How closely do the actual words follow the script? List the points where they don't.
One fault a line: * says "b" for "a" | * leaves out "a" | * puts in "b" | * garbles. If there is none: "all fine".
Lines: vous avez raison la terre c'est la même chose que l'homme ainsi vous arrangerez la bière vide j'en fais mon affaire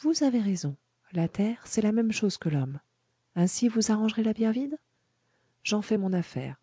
all fine